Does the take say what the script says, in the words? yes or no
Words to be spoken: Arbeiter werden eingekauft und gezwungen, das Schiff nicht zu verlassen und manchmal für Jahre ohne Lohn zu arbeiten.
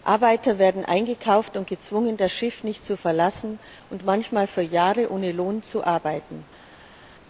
yes